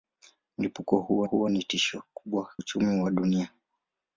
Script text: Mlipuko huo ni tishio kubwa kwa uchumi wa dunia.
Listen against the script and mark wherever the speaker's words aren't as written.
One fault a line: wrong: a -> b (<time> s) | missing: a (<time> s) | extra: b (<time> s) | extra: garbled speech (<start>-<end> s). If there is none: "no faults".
extra: huo (1.2 s)
missing: kwa (2.5 s)